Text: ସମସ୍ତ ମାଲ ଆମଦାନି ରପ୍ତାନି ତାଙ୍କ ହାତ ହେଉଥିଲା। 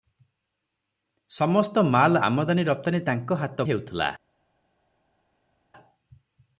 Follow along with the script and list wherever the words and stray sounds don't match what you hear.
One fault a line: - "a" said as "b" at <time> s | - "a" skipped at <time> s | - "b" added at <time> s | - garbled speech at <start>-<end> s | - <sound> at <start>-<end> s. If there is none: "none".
none